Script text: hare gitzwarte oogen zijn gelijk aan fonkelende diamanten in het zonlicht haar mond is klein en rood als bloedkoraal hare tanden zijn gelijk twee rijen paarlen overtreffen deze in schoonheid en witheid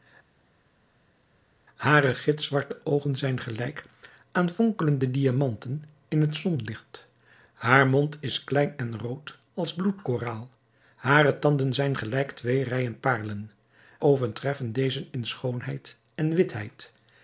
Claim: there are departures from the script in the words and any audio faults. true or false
false